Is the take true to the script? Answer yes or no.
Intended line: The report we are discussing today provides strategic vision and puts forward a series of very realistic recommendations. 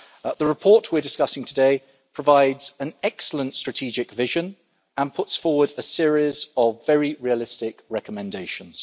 no